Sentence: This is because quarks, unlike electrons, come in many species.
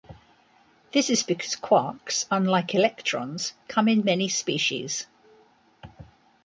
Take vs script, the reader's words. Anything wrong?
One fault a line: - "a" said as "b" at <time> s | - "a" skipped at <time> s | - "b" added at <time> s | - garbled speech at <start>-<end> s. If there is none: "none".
none